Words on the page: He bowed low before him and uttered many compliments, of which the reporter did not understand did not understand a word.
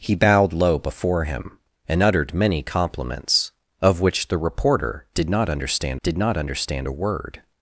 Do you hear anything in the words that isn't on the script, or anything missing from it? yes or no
no